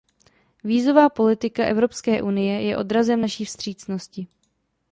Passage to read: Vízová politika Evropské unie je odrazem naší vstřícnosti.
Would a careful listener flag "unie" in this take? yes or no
no